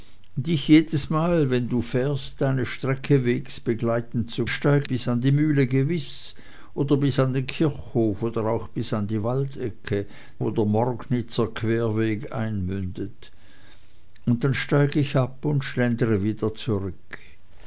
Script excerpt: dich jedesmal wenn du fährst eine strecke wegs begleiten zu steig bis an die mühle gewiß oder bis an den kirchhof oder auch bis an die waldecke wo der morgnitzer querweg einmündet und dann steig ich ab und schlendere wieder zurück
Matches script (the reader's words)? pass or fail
pass